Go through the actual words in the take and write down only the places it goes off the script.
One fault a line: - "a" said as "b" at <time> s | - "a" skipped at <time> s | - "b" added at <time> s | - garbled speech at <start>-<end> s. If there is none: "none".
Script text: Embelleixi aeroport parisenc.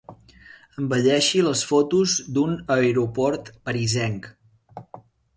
- "les fotos d'un" added at 1.5 s